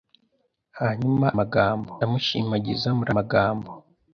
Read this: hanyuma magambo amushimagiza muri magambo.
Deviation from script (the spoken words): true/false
false